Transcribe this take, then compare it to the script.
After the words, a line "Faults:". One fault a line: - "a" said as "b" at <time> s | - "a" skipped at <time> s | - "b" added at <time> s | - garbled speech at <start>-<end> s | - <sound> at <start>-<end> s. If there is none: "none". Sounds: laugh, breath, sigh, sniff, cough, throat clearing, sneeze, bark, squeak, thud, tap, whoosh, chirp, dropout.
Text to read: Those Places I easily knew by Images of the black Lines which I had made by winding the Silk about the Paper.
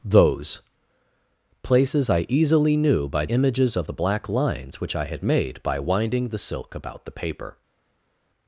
Those Places I easily knew by Images of the black Lines which I had made by winding the Silk about the Paper.
Faults:
none